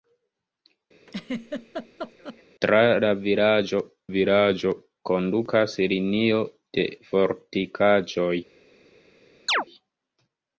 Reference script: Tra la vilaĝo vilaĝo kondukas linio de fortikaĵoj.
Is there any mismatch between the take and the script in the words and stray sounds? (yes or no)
yes